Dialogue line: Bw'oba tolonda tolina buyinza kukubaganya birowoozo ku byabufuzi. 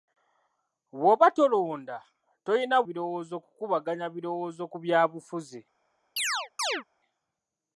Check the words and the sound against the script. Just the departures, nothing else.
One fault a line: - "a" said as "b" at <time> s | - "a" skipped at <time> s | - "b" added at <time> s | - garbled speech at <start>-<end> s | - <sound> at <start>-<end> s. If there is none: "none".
- "buyinza" said as "birowoozo" at 2.9 s
- chirp at 6.2-6.8 s